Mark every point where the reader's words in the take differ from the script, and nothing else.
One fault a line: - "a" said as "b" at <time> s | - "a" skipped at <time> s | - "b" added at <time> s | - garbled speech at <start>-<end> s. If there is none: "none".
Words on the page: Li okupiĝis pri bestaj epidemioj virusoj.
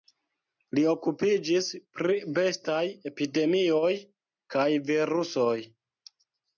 - "kaj" added at 4.6 s